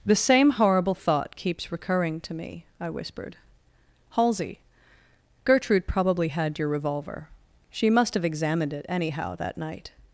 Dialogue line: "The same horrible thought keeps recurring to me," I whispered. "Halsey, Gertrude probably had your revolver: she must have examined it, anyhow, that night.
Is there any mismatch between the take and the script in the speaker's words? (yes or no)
no